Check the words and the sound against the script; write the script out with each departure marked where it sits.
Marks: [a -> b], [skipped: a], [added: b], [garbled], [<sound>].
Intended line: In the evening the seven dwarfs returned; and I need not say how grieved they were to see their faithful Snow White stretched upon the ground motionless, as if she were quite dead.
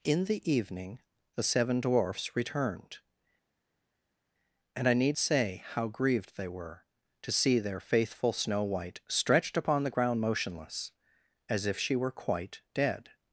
In the evening the seven dwarfs returned; and I need [skipped: not] say how grieved they were to see their faithful Snow White stretched upon the ground motionless, as if she were quite dead.